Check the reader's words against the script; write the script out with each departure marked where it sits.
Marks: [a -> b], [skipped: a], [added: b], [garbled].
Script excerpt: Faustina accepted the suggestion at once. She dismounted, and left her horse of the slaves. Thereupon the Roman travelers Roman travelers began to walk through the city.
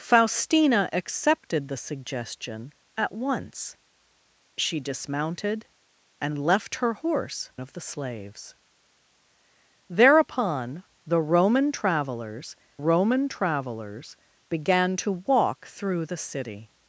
Faustina accepted the suggestion at once. She dismounted, and left her horse of the slaves. Thereupon the Roman travelers Roman travelers began to walk through the city.